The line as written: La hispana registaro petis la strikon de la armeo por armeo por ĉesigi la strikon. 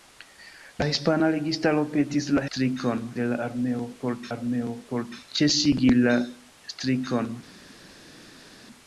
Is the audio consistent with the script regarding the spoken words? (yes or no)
yes